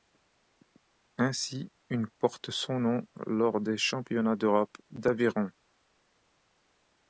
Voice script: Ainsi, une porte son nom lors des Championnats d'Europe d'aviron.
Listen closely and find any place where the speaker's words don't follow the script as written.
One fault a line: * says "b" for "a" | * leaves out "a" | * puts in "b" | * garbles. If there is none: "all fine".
all fine